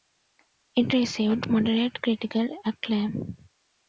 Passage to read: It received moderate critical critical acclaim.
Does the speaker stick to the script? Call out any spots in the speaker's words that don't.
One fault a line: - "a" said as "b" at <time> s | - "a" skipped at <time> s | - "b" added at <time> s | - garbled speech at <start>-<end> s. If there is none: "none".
- "critical" skipped at 2.5 s